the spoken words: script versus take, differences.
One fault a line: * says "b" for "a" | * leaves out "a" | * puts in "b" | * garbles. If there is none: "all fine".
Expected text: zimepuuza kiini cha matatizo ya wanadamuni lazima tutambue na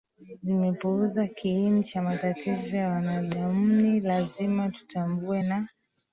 all fine